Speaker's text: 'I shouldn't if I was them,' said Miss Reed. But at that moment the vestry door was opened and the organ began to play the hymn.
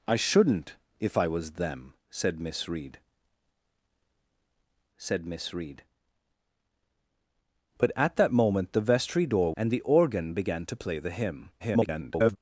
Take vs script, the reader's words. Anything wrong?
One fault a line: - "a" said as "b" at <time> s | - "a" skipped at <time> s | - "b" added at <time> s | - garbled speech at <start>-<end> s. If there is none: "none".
- "said Miss Reed" added at 5.0 s
- "was opened" skipped at 9.5 s
- garbled speech at 11.6-12.4 s